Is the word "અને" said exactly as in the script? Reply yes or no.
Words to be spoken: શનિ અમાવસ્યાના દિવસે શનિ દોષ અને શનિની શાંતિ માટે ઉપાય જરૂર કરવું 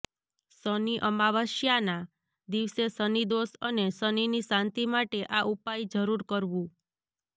yes